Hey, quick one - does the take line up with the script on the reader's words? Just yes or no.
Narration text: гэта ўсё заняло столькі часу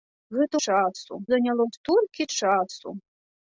no